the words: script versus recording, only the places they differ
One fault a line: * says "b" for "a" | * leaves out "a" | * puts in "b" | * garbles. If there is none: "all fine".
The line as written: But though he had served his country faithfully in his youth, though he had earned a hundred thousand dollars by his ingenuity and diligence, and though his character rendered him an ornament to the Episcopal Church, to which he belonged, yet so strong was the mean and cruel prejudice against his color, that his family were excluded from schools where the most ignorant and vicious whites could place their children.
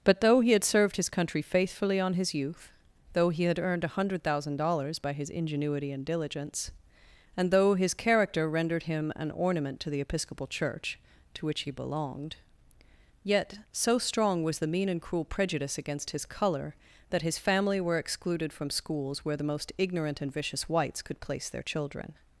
* says "on" for "in"